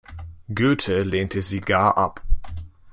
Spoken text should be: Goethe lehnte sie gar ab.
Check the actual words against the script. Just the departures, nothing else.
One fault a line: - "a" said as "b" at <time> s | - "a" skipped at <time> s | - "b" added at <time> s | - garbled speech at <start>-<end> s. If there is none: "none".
none